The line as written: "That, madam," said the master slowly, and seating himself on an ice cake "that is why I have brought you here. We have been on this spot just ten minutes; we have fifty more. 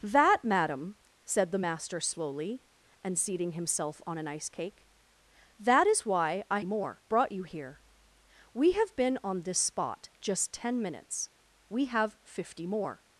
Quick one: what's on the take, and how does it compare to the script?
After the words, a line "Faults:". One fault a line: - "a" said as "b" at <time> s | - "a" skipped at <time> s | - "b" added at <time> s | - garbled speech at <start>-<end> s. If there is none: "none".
"That, madam," said the master slowly, and seating himself on an ice cake "that is why I more brought you here. We have been on this spot just ten minutes; we have fifty more.
Faults:
- "have" said as "more" at 6.6 s